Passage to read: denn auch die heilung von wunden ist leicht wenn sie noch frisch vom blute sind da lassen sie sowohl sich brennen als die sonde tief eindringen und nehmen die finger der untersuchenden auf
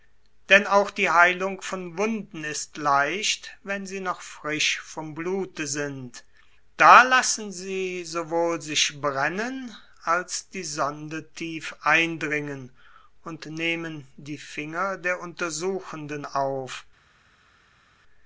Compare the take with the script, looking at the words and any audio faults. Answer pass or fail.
pass